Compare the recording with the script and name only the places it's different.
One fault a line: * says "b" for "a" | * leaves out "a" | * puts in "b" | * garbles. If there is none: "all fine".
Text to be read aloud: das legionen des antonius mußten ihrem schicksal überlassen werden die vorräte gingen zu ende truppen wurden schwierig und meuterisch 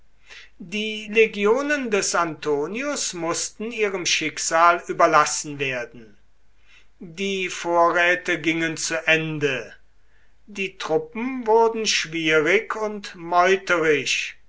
* says "die" for "das"
* puts in "die"